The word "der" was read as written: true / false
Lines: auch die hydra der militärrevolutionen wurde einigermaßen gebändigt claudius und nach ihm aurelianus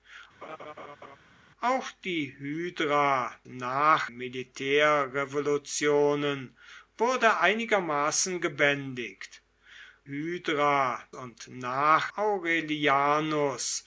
false